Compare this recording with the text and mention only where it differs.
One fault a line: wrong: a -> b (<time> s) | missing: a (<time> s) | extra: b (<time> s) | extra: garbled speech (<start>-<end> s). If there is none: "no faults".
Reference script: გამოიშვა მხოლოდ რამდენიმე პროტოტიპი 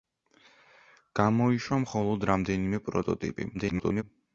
extra: garbled speech (3.5-4.0 s)